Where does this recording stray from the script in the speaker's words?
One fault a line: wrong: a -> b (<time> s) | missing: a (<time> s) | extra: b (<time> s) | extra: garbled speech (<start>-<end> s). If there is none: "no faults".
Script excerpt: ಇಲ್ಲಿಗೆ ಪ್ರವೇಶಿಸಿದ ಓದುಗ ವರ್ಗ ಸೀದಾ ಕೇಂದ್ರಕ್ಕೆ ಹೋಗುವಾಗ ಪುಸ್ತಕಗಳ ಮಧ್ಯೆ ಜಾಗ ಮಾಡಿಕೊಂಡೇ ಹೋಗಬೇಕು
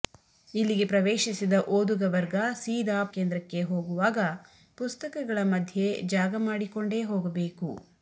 no faults